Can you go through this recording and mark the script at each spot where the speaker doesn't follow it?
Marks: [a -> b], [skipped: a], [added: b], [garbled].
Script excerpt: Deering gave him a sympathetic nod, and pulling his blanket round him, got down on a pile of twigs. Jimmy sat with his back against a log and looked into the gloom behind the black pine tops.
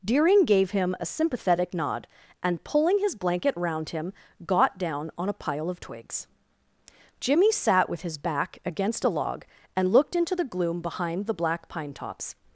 Deering gave him a sympathetic nod, and pulling his blanket round him, got down on a pile of twigs. Jimmy sat with his back against a log and looked into the gloom behind the black pine tops.